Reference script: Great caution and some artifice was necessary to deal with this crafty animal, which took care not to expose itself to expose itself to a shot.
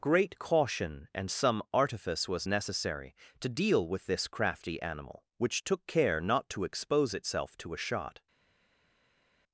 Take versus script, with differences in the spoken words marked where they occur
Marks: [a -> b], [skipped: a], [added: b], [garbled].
Great caution and some artifice was necessary to deal with this crafty animal, which took care not to expose itself to [skipped: expose itself to] a shot.